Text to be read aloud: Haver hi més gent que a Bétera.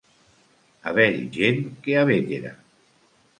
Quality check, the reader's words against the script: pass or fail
fail